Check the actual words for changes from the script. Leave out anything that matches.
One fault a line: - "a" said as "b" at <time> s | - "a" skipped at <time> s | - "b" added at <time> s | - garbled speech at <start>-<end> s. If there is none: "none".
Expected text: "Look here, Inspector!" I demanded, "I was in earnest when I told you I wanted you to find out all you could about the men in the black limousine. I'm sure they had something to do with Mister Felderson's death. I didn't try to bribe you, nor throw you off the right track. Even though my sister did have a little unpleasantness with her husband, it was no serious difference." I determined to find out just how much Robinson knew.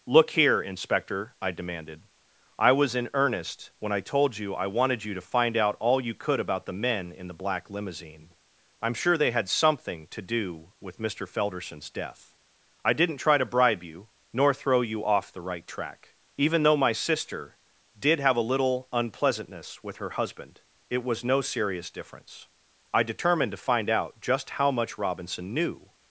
none